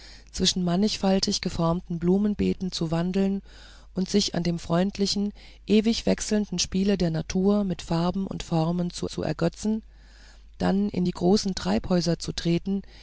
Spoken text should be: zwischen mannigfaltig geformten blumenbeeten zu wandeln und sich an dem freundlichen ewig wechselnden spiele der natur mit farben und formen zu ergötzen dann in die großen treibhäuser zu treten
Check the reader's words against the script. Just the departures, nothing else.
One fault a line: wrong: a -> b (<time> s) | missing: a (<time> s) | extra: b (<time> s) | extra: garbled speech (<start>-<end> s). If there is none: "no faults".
extra: zu (9.1 s)